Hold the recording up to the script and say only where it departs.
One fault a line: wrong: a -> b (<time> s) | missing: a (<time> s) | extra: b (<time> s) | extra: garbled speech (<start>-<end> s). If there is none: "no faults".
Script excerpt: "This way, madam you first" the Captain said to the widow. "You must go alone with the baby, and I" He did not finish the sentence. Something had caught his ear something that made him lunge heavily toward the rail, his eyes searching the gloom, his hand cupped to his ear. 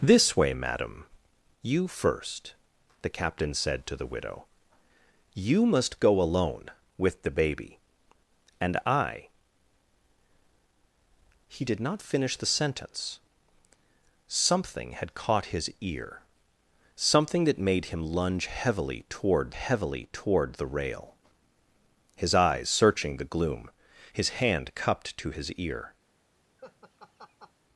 extra: heavily toward (19.5 s)